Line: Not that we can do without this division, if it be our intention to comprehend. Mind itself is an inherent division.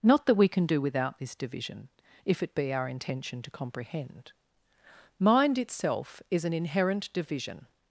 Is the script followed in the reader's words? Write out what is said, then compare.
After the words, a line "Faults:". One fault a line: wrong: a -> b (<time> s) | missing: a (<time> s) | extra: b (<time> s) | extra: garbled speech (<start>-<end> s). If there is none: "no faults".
Not that we can do without this division, if it be our intention to comprehend. Mind itself is an inherent division.
Faults:
no faults